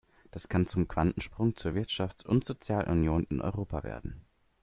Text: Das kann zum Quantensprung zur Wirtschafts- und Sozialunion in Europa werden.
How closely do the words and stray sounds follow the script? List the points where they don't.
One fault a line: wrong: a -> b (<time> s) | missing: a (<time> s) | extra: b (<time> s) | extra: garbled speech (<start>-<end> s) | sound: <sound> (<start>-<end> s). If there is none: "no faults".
no faults